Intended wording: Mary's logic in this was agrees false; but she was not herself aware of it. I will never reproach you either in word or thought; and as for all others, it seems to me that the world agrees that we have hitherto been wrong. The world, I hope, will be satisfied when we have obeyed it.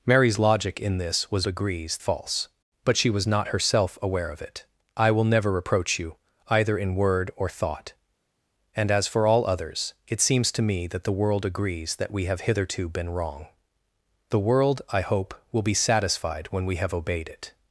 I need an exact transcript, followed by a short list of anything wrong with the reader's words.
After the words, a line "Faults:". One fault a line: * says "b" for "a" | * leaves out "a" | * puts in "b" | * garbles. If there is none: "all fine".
Mary's logic in this was agrees false; but she was not herself aware of it. I will never reproach you either in word or thought; and as for all others, it seems to me that the world agrees that we have hitherto been wrong. The world, I hope, will be satisfied when we have obeyed it.
Faults:
all fine